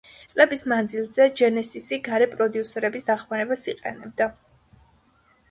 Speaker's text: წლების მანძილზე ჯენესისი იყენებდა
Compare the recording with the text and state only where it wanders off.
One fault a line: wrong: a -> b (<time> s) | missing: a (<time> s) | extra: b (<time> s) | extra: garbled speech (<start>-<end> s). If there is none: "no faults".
extra: გარე პროდიუსერების დახმარებას (2.1 s)